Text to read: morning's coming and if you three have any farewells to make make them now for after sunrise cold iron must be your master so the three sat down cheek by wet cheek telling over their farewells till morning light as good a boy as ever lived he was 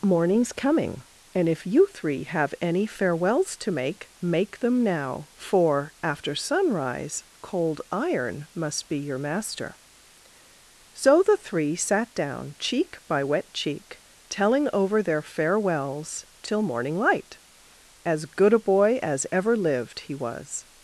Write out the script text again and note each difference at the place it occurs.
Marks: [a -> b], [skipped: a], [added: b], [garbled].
morning's coming and if you three have any farewells to make make them now for after sunrise cold iron must be your master so the three sat down cheek by wet cheek telling over their farewells till morning light as good a boy as ever lived he was